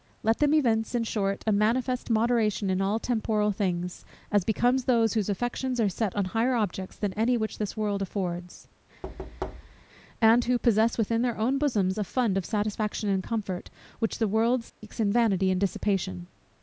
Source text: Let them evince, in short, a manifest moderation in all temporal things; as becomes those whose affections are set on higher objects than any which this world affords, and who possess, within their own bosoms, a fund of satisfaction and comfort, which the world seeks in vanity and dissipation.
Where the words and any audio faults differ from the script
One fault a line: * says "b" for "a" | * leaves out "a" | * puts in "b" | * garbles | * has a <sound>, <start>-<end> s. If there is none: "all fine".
* has a thud, 9.0-9.9 s
* has a dropout, 14.7-14.8 s